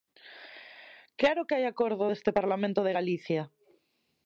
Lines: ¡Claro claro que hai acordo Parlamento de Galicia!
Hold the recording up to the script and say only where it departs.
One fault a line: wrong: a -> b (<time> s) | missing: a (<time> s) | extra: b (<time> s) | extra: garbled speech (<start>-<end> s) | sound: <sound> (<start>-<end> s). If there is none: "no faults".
missing: claro (1.4 s)
extra: deste (2.0 s)